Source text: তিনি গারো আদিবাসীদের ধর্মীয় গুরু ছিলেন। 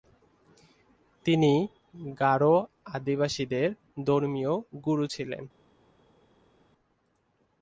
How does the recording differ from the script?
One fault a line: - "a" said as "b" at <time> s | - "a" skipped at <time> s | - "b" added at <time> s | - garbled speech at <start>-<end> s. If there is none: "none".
none